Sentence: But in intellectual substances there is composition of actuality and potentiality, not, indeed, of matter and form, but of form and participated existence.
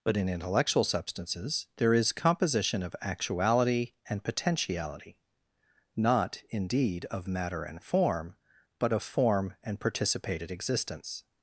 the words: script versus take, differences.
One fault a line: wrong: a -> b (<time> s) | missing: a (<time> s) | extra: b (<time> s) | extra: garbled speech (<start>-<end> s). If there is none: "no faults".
no faults